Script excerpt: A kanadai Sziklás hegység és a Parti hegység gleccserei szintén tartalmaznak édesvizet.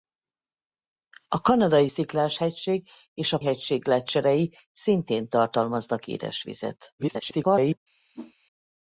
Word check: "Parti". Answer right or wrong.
wrong